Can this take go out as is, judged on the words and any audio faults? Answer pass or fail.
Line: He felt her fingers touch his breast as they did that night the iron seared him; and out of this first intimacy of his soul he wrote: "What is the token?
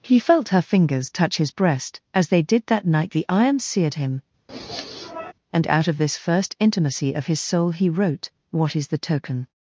fail